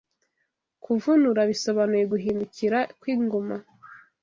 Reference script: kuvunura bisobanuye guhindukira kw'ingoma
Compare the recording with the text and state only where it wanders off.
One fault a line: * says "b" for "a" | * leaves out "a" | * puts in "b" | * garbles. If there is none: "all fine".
all fine